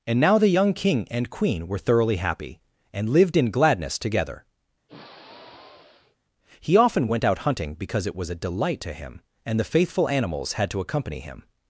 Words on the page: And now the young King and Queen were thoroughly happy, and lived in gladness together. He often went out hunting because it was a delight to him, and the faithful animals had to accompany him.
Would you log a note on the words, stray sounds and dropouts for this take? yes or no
yes